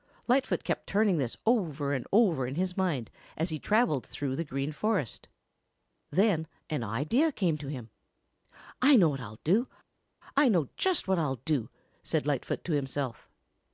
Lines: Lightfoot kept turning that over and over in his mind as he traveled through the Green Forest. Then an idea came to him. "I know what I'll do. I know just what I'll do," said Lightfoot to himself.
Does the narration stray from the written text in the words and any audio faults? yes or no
yes